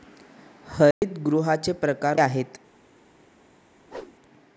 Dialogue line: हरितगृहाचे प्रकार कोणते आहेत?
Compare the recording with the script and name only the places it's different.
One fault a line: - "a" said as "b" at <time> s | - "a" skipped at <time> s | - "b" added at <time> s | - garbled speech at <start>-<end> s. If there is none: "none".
- "कोणते" skipped at 2.2 s